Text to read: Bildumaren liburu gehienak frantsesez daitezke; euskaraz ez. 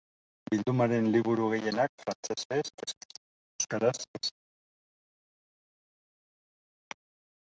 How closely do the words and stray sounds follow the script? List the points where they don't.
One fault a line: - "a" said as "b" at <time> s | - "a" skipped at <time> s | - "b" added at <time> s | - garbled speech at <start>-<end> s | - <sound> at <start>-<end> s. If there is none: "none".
none